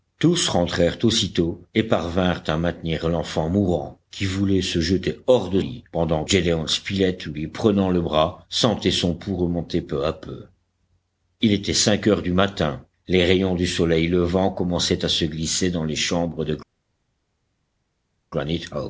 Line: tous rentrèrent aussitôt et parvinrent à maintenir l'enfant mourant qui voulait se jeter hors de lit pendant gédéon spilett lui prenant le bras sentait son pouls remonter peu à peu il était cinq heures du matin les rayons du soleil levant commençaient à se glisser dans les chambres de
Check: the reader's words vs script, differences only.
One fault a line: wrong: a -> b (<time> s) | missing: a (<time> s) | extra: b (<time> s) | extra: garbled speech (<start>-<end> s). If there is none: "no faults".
no faults